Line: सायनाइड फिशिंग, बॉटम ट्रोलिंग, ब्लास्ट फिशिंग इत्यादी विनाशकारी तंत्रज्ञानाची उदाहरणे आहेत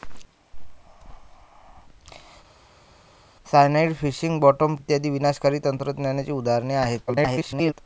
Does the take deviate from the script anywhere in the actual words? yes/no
yes